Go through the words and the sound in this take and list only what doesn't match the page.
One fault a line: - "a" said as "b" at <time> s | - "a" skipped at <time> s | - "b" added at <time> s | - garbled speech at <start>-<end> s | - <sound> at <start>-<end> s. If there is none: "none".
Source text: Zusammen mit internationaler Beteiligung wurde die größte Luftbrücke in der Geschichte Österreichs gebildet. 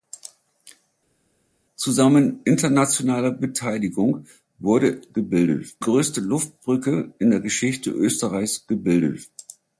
- "mit" skipped at 2.4 s
- "die" said as "gebildet" at 5.1 s